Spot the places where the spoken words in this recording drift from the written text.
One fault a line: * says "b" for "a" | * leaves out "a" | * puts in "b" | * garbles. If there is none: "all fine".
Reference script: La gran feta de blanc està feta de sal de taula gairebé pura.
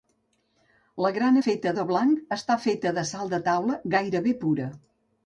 all fine